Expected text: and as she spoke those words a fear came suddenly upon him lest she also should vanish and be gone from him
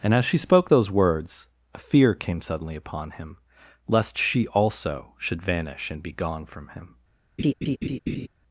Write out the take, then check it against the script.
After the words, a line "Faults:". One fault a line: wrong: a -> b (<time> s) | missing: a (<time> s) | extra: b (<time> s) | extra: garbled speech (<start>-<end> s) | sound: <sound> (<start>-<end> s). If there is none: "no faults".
and as she spoke those words a fear came suddenly upon him lest she also should vanish and be gone from him
Faults:
sound: laugh (7.4-8.3 s)